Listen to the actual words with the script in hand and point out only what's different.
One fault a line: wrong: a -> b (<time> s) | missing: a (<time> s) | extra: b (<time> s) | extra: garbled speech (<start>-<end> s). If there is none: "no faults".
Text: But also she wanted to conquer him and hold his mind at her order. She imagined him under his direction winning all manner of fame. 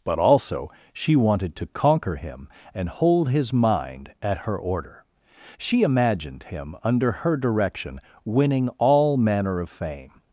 wrong: his -> her (7.1 s)